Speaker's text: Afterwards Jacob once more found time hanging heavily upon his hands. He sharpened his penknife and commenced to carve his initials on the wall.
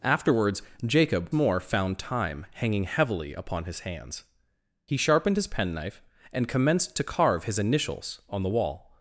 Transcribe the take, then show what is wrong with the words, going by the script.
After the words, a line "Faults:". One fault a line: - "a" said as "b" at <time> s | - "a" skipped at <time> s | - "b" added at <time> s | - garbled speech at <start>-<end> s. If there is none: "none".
Afterwards Jacob more found time hanging heavily upon his hands. He sharpened his penknife and commenced to carve his initials on the wall.
Faults:
- "once" skipped at 1.3 s